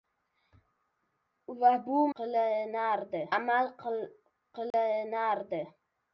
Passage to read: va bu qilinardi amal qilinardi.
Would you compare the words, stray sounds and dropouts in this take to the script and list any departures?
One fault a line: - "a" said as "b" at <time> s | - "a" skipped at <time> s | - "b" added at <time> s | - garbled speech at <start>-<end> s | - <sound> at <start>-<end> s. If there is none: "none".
- dropout at 4.7-4.7 s